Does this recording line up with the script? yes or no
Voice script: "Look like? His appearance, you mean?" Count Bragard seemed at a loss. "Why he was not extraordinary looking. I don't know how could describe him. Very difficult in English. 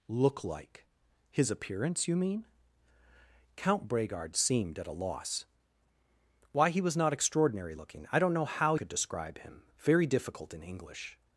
yes